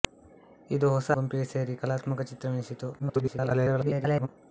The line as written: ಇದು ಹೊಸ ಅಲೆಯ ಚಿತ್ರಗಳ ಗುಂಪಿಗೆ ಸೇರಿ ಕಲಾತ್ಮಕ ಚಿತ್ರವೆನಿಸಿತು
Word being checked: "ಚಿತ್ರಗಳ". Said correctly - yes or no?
no